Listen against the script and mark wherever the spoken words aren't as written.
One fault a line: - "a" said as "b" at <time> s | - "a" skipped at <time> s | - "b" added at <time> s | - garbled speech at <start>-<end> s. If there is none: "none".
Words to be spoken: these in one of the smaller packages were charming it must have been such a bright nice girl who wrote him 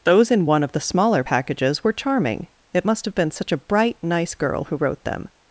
- "these" said as "those" at 0.0 s
- "him" said as "them" at 5.0 s